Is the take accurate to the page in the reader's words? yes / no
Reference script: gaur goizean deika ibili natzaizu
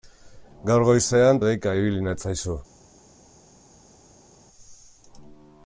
yes